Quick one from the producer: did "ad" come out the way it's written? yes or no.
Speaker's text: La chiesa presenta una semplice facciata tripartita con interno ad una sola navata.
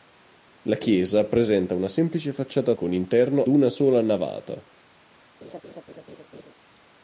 no